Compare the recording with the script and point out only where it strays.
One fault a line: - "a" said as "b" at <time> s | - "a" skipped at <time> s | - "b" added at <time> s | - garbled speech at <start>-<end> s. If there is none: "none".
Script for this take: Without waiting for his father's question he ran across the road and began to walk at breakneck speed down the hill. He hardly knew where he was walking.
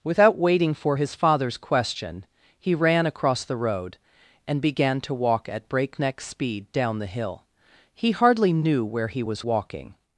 none